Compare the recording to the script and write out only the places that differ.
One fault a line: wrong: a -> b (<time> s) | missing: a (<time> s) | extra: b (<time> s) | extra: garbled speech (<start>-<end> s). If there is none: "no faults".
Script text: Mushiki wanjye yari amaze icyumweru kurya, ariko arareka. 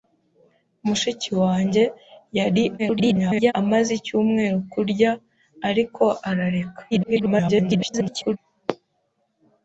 extra: garbled speech (2.8-3.5 s)
extra: garbled speech (6.9-8.4 s)